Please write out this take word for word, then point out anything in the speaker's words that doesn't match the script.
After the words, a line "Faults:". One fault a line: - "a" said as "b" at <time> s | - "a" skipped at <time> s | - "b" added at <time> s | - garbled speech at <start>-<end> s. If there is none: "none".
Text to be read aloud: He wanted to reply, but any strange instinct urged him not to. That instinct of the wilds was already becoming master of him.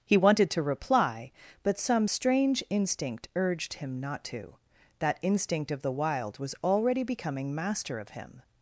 He wanted to reply, but some strange instinct urged him not to. That instinct of the wild was already becoming master of him.
Faults:
- "any" said as "some" at 1.8 s
- "wilds" said as "wild" at 5.9 s